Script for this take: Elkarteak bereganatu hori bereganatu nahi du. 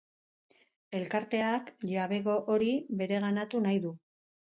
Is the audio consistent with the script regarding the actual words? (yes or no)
no